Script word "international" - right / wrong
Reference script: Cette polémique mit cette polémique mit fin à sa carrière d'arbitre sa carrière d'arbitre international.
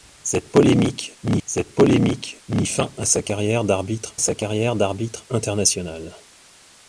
right